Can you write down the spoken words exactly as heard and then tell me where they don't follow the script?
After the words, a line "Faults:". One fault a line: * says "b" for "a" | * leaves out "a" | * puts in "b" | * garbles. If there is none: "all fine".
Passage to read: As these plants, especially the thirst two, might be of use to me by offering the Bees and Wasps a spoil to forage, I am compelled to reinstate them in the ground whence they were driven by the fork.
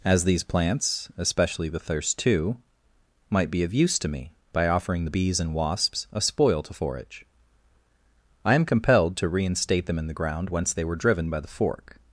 As these plants, especially the thirst two, might be of use to me by offering the Bees and Wasps a spoil to forage, I am compelled to reinstate them in the ground whence they were driven by the fork.
Faults:
all fine